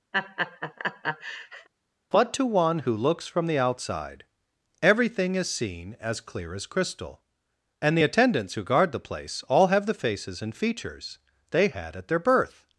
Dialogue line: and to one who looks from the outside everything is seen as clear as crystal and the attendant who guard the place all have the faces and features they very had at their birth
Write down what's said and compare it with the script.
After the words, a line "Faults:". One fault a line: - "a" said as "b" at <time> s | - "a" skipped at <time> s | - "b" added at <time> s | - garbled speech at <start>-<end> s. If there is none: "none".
but to one who looks from the outside everything is seen as clear as crystal and the attendants who guard the place all have the faces and features they had at their birth
Faults:
- "and" said as "but" at 2.1 s
- "attendant" said as "attendants" at 8.0 s
- "very" skipped at 11.7 s